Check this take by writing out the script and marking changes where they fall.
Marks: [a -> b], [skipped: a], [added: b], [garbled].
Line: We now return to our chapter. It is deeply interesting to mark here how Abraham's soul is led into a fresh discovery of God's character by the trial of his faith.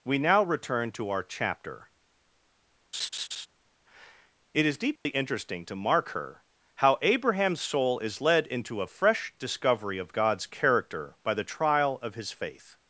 We now return to our chapter. It is deeply interesting to mark [here -> her] how Abraham's soul is led into a fresh discovery of God's character by the trial of his faith.